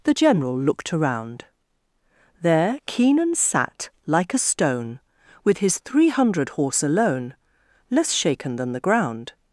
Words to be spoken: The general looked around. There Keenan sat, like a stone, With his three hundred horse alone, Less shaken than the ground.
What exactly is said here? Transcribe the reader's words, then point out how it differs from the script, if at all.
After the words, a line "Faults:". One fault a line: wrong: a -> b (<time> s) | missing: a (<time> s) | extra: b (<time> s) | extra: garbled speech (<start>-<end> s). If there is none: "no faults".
The general looked around. There Keenan sat, like a stone, With his three hundred horse alone, Less shaken than the ground.
Faults:
no faults